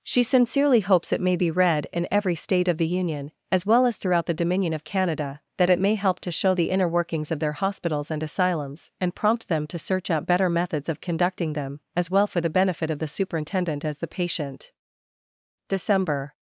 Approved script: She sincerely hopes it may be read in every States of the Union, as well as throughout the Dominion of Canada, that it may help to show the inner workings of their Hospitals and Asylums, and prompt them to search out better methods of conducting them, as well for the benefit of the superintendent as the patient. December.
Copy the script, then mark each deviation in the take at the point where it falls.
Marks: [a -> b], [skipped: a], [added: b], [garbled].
She sincerely hopes it may be read in every [States -> State] of the Union, as well as throughout the Dominion of Canada, that it may help to show the inner workings of their Hospitals and Asylums, and prompt them to search out better methods of conducting them, as well for the benefit of the superintendent as the patient. December.